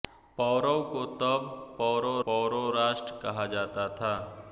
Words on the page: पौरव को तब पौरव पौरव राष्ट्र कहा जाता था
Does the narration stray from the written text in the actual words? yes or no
no